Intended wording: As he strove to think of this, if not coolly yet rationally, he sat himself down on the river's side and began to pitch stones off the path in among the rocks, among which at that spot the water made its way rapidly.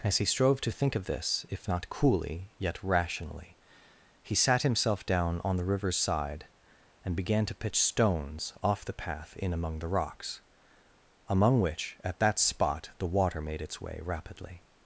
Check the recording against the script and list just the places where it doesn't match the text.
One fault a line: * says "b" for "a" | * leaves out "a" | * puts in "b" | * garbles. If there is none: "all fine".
all fine